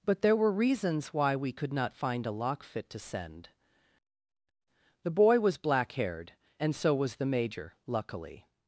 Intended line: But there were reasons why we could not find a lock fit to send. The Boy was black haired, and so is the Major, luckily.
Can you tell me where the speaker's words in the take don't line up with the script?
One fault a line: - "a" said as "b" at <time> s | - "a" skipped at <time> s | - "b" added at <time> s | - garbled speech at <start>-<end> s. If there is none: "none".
- "is" said as "was" at 6.9 s